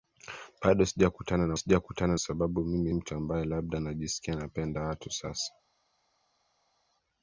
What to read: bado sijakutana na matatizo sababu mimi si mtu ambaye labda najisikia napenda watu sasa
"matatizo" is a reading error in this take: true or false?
true